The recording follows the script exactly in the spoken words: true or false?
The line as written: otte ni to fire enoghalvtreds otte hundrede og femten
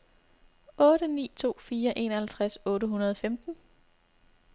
true